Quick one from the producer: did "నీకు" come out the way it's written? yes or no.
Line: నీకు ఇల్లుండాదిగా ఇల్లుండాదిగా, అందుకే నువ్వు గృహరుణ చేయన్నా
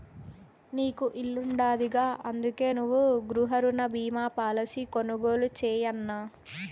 yes